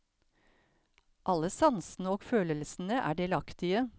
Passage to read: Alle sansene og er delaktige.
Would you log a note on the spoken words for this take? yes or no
yes